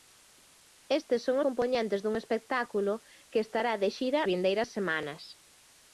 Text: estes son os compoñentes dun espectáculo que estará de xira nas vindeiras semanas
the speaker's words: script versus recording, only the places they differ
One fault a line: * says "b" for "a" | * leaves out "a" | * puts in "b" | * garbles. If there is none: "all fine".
* leaves out "os"
* leaves out "nas"